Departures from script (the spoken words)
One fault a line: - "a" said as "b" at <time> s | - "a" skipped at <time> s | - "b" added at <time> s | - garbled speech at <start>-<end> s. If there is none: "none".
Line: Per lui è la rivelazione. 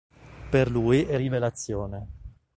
- "la" skipped at 1.2 s